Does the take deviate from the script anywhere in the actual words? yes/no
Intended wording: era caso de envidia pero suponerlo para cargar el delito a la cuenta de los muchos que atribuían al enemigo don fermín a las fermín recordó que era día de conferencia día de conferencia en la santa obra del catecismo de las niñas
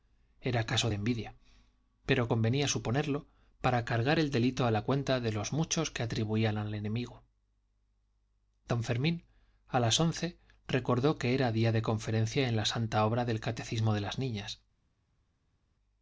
yes